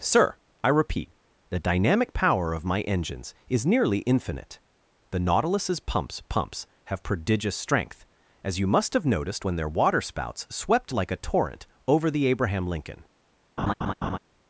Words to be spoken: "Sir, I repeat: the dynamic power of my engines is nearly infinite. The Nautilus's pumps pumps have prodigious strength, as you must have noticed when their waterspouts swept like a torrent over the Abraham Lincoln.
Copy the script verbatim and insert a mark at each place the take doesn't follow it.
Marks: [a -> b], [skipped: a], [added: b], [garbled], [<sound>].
"Sir, I repeat: the dynamic power of my engines is nearly infinite. The Nautilus's pumps pumps have prodigious strength, as you must have noticed when their waterspouts swept like a torrent over the Abraham Lincoln. [laugh]